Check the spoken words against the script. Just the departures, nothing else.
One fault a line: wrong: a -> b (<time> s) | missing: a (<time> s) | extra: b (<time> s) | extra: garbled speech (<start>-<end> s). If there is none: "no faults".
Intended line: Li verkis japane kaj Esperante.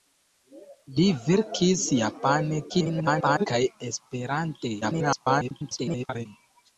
extra: garbled speech (2.7-3.5 s)
extra: garbled speech (4.8-6.3 s)